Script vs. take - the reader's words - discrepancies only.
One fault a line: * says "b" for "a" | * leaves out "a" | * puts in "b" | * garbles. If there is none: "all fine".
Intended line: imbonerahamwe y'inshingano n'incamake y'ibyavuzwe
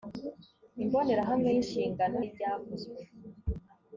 * leaves out "n'incamake"